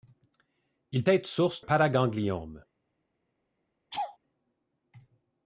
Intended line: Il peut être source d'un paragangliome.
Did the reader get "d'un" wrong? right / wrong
wrong